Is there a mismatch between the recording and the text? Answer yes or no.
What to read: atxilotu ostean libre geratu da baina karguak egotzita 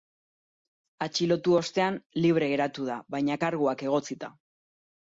no